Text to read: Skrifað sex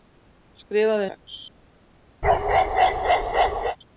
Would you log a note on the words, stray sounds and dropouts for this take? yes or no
yes